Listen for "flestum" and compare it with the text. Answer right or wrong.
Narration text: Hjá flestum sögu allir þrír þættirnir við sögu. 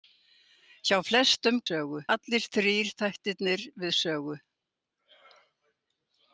right